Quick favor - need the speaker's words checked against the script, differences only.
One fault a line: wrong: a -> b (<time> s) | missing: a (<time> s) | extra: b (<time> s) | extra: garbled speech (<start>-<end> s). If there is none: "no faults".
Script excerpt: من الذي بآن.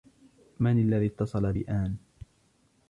extra: اتصل (1.1 s)